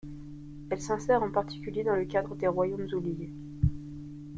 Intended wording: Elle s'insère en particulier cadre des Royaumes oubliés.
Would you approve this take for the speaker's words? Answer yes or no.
no